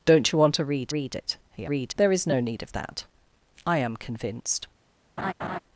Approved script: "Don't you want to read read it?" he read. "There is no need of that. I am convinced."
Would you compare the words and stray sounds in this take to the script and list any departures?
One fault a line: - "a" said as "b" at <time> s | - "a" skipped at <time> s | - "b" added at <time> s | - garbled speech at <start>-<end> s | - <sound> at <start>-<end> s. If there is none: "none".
- laugh at 5.2-5.6 s